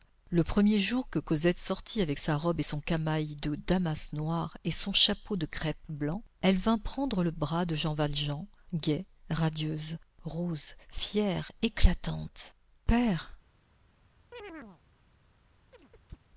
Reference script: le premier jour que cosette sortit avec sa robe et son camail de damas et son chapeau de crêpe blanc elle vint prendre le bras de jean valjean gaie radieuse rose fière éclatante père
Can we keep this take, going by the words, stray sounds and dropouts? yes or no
no